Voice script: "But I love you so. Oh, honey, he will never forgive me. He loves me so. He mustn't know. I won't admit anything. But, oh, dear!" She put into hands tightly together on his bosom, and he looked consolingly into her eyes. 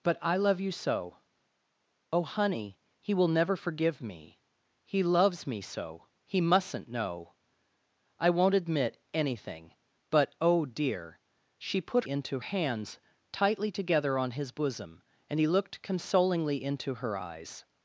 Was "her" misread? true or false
false